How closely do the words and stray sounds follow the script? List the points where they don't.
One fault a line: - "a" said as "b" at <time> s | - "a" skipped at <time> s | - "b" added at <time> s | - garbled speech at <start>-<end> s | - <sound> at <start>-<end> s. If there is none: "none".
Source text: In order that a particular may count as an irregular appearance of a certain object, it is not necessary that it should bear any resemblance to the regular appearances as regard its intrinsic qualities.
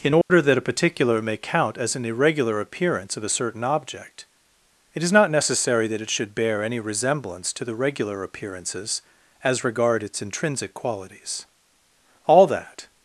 - dropout at 0.2-0.3 s
- "All that" added at 12.3 s